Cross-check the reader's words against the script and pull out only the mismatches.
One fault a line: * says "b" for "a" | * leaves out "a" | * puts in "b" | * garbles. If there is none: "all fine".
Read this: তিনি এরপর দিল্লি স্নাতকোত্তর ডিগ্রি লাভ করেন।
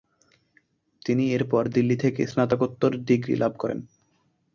* puts in "থেকে"